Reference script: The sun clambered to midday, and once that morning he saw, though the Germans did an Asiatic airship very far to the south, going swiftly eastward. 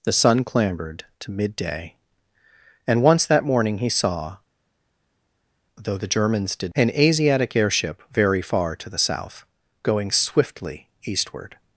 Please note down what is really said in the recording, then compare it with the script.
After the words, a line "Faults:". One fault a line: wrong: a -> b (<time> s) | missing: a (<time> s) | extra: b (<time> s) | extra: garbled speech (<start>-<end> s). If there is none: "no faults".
The sun clambered to midday, and once that morning he saw, though the Germans did an Asiatic airship very far to the south, going swiftly eastward.
Faults:
no faults